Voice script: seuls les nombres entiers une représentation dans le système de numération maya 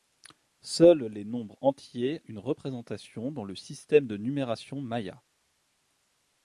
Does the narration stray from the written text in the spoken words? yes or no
no